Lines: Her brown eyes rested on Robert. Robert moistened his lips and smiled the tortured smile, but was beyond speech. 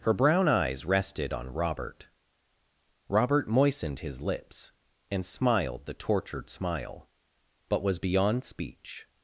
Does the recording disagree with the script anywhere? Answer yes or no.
no